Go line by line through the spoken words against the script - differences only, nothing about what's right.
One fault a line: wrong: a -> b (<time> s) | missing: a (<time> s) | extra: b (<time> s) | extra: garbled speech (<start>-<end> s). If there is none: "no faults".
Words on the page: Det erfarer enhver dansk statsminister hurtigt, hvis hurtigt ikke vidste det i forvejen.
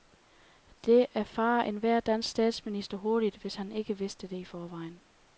wrong: hurtigt -> han (3.5 s)